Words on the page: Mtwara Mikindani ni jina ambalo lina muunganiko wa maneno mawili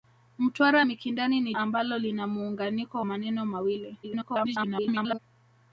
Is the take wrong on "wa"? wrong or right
wrong